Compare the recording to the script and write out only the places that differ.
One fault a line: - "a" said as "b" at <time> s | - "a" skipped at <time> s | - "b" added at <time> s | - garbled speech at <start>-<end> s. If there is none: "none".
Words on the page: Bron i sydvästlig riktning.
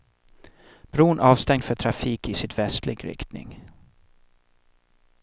- "avstängd för trafik" added at 1.2 s